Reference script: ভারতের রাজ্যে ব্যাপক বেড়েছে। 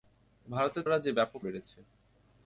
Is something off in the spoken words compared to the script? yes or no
no